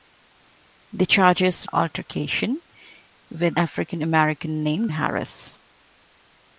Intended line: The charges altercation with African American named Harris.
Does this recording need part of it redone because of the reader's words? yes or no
no